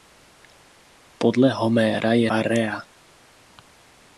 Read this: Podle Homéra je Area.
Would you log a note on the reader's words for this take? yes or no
no